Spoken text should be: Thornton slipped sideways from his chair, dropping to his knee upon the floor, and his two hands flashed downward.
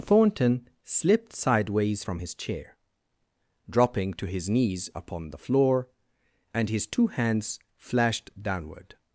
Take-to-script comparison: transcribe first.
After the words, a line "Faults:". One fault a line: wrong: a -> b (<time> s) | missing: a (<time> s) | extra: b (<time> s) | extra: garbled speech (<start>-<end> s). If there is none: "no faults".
Thornton slipped sideways from his chair, dropping to his knees upon the floor, and his two hands flashed downward.
Faults:
wrong: knee -> knees (4.5 s)